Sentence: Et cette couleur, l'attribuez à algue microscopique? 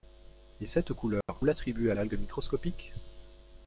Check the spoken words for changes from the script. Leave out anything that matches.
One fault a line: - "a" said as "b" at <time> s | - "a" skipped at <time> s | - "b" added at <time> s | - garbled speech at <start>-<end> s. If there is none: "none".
none